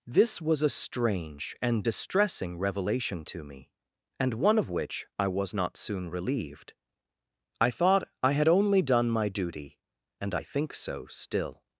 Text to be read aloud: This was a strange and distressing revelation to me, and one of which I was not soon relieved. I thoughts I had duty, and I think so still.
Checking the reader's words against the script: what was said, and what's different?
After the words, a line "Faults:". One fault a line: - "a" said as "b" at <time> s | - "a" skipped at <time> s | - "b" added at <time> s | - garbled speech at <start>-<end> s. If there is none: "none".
This was a strange and distressing revelation to me, and one of which I was not soon relieved. I thought I had only done my duty, and I think so still.
Faults:
- "thoughts" said as "thought" at 7.7 s
- "only done my" added at 8.5 s